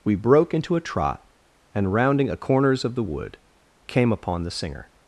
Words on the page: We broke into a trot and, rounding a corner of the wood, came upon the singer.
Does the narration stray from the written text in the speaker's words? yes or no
yes